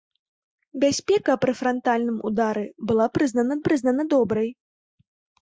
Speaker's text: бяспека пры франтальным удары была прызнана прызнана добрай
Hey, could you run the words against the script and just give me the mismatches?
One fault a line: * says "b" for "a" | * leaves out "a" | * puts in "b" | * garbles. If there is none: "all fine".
all fine